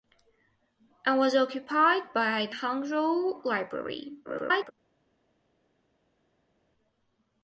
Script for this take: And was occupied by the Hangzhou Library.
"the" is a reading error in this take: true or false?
true